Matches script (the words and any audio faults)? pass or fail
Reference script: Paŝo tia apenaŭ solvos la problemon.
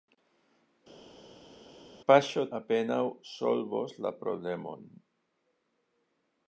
fail